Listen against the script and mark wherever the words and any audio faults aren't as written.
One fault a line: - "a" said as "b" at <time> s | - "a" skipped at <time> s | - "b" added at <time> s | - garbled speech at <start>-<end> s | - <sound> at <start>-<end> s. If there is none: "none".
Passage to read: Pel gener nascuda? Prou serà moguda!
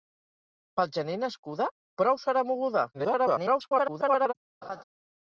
- garbled speech at 2.9-4.3 s
- laugh at 4.6-4.8 s